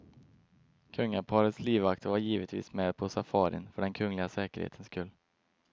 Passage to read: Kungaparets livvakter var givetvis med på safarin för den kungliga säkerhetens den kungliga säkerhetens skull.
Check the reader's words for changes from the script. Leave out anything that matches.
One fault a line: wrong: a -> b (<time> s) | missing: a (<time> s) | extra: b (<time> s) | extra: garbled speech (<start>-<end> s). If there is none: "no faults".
missing: den kungliga säkerhetens (4.9 s)